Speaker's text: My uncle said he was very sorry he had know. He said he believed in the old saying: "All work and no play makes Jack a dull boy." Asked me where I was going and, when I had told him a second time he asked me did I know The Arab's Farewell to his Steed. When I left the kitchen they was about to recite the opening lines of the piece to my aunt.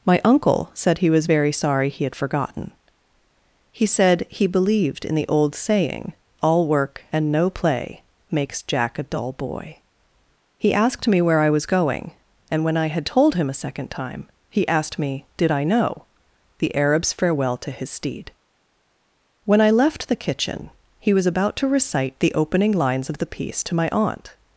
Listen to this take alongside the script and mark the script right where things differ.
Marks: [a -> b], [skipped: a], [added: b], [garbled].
My uncle said he was very sorry he had [know. -> forgotten] He said he believed in the old saying: "All work and no play makes Jack a dull boy." [added: He] Asked me where I was going and, when I had told him a second time he asked me did I know The Arab's Farewell to his Steed. When I left the kitchen [they -> he] was about to recite the opening lines of the piece to my aunt.